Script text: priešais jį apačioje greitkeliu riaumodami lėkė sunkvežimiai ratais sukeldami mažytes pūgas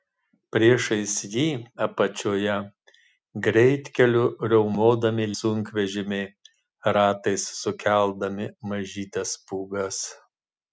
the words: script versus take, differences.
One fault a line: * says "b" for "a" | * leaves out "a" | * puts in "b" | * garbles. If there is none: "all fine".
* leaves out "lėkė"